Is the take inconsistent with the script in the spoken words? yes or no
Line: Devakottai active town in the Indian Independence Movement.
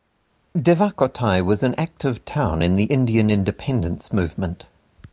yes